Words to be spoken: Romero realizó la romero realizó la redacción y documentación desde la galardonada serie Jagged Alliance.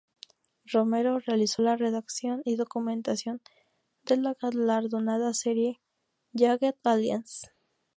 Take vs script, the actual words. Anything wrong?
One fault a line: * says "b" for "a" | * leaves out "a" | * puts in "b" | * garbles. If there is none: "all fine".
* leaves out "romero realizó la"
* says "de" for "desde"